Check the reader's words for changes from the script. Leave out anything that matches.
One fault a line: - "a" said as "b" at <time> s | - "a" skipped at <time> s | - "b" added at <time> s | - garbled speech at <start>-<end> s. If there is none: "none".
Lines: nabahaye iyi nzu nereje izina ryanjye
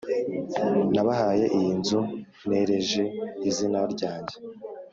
none